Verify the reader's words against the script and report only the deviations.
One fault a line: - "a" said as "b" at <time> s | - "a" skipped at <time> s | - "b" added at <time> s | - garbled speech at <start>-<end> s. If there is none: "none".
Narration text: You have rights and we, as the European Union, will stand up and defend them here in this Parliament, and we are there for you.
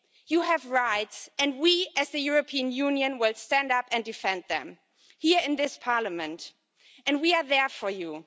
none